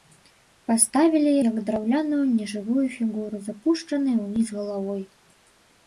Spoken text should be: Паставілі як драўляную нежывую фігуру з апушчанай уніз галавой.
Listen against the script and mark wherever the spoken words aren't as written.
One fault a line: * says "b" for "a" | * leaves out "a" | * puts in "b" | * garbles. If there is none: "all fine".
all fine